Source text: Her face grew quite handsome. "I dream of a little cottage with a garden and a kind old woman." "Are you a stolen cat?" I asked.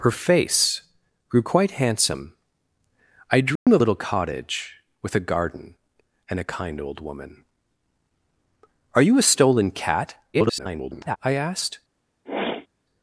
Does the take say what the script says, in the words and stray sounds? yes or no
no